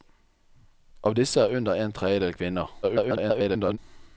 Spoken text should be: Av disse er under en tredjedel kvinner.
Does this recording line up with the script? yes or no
no